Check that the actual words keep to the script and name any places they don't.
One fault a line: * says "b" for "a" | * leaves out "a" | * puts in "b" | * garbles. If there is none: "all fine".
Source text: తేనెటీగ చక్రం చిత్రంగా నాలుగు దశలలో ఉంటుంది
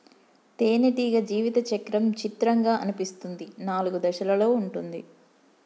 * puts in "జీవిత"
* puts in "అనిపిస్తుంది"